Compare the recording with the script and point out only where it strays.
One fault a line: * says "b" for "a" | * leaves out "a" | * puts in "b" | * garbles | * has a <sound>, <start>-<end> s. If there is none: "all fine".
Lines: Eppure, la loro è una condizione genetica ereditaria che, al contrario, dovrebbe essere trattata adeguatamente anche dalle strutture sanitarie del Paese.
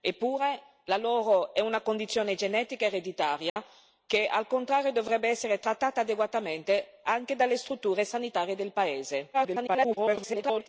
* has a dropout, 3.5-3.6 s
* garbles